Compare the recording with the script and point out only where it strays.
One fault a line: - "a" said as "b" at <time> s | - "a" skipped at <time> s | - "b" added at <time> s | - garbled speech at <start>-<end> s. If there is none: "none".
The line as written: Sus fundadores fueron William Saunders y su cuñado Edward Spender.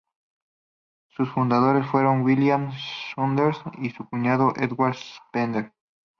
none